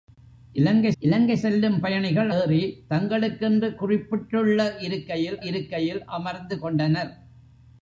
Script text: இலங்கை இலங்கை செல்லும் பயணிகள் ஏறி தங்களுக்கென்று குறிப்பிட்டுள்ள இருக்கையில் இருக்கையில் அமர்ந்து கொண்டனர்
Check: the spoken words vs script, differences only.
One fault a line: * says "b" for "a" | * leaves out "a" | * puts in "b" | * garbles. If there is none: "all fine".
all fine